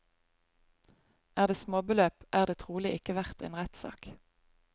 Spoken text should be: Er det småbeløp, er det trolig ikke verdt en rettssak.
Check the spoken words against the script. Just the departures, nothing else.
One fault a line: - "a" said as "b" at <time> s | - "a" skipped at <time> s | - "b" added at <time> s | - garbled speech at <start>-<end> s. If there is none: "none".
none